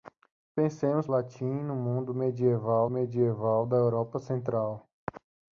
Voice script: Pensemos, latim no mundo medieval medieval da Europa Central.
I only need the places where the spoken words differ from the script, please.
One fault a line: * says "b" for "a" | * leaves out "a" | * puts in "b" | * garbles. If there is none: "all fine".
all fine